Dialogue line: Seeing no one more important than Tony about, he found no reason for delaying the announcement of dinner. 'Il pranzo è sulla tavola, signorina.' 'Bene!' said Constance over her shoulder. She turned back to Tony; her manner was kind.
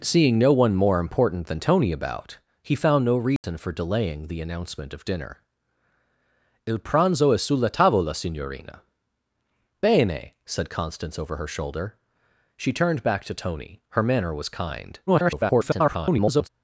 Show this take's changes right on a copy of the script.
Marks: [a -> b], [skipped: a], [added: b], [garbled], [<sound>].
Seeing no one more important than Tony about, he found no reason [dropout] for delaying the announcement of dinner. 'Il pranzo è sulla tavola, signorina.' 'Bene!' said Constance over her shoulder. She turned back to Tony; her manner was kind. [garbled]